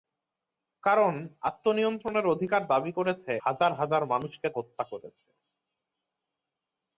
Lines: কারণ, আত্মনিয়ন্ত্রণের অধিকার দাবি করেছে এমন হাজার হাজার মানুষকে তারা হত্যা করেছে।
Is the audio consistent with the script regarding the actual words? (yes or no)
no